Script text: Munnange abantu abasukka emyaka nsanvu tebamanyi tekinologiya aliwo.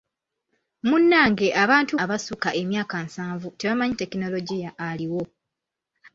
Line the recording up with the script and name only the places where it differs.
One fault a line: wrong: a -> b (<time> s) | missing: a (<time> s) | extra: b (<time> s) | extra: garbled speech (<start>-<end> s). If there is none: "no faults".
no faults